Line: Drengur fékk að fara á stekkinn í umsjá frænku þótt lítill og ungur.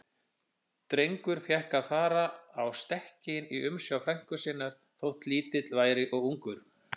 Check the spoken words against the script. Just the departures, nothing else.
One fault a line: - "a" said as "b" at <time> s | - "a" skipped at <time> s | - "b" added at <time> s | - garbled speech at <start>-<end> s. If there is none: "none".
- "sinnar" added at 4.5 s
- "væri" added at 5.8 s